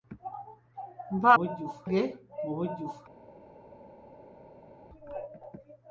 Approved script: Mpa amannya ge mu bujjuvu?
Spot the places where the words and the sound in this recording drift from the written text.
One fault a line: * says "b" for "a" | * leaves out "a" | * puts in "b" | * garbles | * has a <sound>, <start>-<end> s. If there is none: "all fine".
* says "bujjuvu" for "amannya"